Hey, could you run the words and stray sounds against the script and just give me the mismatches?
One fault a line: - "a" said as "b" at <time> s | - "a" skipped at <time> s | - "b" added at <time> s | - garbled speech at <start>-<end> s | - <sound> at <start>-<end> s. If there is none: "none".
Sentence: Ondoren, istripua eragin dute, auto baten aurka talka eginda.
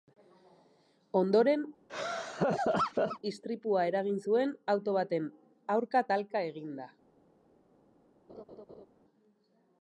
- laugh at 1.9-3.2 s
- "dute" said as "zuen" at 4.3 s
- laugh at 8.3-8.9 s